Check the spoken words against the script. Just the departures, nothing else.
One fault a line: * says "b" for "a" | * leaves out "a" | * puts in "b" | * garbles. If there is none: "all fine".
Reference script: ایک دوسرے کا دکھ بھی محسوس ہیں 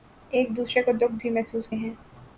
all fine